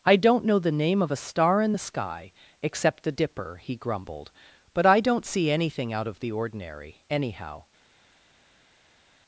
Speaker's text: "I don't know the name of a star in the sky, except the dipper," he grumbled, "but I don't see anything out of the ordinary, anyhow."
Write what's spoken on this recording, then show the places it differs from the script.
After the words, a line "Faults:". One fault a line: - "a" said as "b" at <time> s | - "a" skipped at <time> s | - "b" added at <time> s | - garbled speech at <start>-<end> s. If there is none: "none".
"I don't know the name of a star in the sky, except the dipper," he grumbled, "but I don't see anything out of the ordinary, anyhow."
Faults:
none